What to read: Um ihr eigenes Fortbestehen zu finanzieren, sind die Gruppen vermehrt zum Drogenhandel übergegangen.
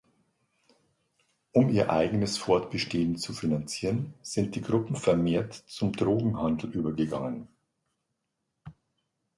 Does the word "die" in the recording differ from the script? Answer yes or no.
no